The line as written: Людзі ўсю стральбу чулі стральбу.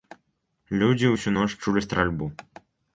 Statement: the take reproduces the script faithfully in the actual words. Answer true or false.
false